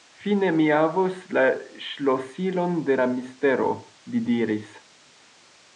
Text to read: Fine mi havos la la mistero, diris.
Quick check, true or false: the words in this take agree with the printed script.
false